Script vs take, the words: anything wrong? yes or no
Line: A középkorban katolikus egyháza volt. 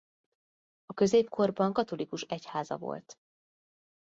no